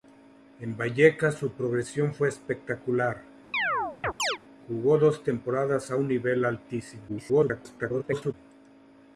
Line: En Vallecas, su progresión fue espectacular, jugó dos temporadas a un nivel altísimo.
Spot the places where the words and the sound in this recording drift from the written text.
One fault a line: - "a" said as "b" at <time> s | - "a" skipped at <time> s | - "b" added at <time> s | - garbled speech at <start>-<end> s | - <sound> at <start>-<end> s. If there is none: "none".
- chirp at 3.5-4.4 s
- garbled speech at 7.1-8.3 s